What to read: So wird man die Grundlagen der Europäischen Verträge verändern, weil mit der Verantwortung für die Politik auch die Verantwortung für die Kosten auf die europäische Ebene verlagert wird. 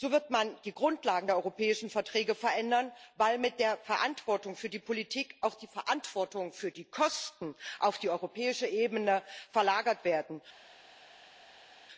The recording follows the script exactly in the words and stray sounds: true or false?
true